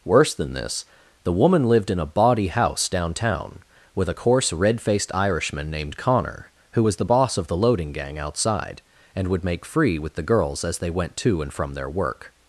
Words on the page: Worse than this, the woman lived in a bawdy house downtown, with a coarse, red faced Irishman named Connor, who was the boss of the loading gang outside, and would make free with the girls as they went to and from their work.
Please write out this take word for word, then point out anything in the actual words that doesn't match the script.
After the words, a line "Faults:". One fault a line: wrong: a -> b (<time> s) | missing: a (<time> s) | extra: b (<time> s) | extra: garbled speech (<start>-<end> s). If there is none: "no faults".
Worse than this, the woman lived in a bawdy house downtown, with a coarse, red faced Irishman named Connor, who was the boss of the loading gang outside, and would make free with the girls as they went to and from their work.
Faults:
no faults